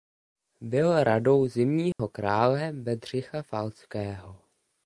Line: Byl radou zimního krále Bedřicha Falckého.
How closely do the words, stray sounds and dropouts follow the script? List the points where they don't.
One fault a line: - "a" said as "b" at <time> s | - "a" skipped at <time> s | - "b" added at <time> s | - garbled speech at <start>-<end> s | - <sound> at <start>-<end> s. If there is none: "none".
- dropout at 1.9-2.0 s